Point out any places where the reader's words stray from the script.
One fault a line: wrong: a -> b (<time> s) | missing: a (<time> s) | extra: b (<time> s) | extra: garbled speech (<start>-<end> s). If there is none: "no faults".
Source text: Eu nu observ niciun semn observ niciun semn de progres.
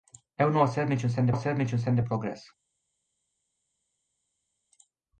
no faults